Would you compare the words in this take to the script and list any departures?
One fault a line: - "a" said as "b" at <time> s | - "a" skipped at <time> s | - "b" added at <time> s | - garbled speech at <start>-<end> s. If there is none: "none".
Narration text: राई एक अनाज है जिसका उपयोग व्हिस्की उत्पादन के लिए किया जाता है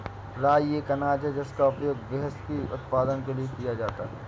none